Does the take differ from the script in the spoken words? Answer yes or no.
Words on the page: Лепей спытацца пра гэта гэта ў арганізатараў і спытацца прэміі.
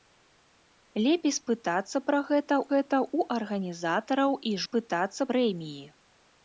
no